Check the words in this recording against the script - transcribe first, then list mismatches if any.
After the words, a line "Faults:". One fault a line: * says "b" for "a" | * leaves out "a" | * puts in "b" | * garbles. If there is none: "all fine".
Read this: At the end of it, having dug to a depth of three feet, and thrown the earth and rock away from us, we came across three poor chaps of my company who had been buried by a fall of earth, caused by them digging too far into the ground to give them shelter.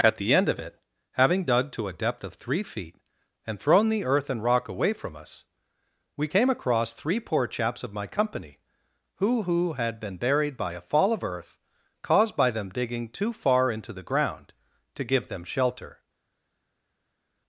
At the end of it, having dug to a depth of three feet, and thrown the earth and rock away from us, we came across three poor chaps of my company who who had been buried by a fall of earth, caused by them digging too far into the ground to give them shelter.
Faults:
* puts in "who"